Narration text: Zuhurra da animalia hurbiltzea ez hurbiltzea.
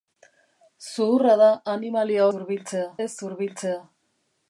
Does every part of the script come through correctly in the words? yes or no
yes